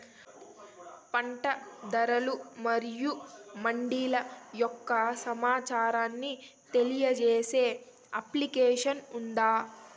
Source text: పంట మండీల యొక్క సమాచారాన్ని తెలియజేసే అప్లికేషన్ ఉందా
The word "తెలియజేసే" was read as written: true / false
true